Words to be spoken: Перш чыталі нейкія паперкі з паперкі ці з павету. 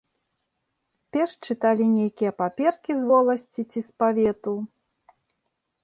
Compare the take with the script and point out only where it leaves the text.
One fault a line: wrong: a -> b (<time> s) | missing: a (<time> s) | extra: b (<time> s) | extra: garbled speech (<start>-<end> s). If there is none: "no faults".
wrong: паперкі -> воласці (3.1 s)